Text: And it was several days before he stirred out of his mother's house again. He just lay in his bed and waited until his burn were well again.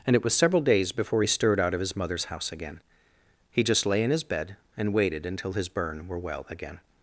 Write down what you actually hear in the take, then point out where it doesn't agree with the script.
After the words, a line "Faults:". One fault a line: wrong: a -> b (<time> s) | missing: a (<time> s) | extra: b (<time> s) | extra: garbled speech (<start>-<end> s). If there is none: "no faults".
And it was several days before he stirred out of his mother's house again. He just lay in his bed and waited until his burn were well again.
Faults:
no faults